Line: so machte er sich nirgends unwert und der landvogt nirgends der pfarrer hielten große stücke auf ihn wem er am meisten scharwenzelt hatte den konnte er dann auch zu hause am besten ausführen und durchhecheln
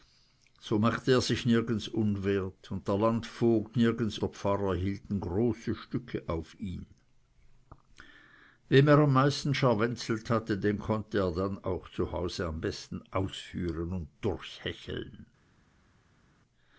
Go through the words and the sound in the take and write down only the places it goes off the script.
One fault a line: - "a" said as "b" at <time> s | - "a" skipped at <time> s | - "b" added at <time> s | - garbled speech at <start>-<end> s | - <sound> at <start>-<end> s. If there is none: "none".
none